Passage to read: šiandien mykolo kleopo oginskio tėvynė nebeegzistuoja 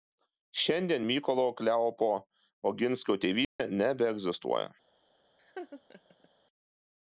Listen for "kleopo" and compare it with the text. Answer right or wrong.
right